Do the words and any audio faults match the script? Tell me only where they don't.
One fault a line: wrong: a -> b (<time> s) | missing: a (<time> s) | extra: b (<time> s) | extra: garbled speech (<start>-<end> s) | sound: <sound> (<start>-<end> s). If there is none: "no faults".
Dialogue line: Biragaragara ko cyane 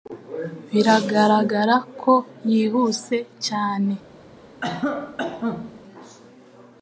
extra: yihuse (2.5 s)
sound: cough (4.6-5.8 s)